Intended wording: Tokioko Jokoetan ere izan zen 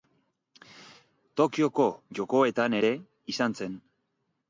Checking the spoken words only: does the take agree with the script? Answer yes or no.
yes